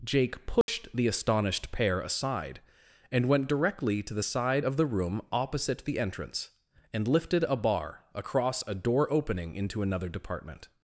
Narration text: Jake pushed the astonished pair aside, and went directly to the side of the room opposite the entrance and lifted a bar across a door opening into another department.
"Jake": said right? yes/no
yes